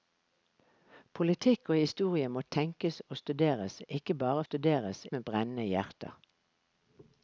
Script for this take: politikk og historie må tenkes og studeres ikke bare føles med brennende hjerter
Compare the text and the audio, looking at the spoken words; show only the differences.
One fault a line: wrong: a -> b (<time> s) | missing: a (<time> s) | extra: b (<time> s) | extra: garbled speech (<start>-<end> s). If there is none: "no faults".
wrong: føles -> studeres (4.4 s)